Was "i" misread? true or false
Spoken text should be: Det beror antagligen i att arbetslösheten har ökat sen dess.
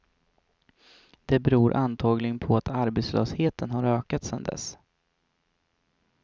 true